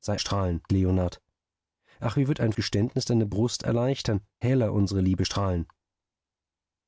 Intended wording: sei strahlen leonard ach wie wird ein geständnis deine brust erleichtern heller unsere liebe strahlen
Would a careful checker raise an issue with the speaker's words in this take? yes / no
no